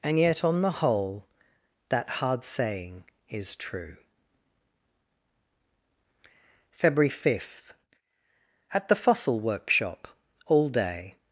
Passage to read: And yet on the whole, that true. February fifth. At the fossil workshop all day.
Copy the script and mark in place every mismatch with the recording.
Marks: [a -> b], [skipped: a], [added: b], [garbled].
And yet on the whole, that [added: hard saying is] true. February fifth. At the fossil workshop all day.